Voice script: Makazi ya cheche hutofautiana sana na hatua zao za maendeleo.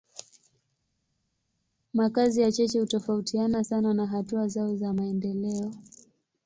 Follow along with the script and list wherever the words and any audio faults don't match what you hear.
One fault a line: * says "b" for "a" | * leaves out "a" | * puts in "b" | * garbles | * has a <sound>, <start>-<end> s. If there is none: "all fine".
all fine